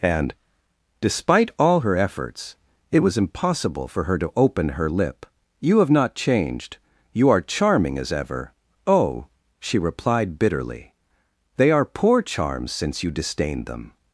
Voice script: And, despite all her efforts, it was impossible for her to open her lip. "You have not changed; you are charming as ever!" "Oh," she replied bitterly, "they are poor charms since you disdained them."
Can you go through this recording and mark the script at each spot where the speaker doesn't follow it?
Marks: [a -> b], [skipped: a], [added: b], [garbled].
And, despite all her efforts, it was impossible for her to open her lip. "You have not changed; you are charming as ever!" "Oh," she replied bitterly, "they are poor charms since you disdained them."